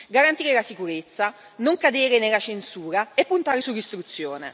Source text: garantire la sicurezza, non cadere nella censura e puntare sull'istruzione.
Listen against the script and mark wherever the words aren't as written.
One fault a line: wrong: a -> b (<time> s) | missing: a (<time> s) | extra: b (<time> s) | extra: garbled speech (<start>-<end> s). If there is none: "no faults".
no faults